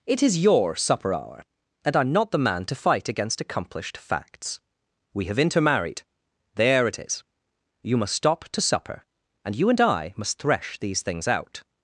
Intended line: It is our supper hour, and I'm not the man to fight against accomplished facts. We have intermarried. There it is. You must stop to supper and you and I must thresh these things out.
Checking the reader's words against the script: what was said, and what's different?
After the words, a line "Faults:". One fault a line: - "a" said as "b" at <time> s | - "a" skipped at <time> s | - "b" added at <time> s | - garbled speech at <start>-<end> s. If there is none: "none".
It is your supper hour, and I'm not the man to fight against accomplished facts. We have intermarried. There it is. You must stop to supper and you and I must thresh these things out.
Faults:
- "our" said as "your" at 0.4 s